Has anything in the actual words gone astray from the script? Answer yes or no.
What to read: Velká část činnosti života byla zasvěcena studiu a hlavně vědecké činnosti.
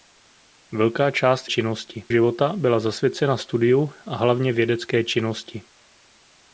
no